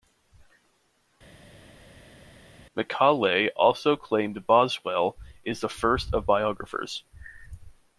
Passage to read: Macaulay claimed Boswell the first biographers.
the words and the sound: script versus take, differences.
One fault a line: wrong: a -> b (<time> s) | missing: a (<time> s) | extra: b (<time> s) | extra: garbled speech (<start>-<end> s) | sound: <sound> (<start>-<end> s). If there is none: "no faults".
extra: also (3.6 s)
extra: is (5.4 s)
extra: of (6.1 s)